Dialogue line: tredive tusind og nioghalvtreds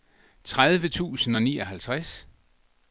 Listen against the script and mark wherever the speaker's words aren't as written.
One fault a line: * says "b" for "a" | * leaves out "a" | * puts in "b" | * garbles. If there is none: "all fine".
all fine